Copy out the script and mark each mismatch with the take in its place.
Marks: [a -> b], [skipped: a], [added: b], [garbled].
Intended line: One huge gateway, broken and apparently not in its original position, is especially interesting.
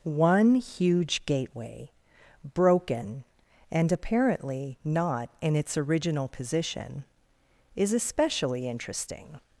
One huge gateway, broken and apparently not in its original position, is especially interesting.